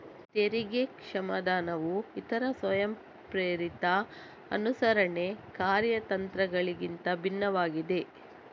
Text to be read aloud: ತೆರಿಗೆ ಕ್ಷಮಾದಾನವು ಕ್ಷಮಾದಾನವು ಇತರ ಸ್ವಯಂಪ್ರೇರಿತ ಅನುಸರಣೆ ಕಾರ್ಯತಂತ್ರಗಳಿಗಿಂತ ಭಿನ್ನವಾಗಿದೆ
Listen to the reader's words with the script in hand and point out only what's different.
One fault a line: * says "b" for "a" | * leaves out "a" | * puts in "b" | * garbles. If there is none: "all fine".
* leaves out "ಕ್ಷಮಾದಾನವು"